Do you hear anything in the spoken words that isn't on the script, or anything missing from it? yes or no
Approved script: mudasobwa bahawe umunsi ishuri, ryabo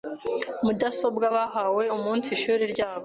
no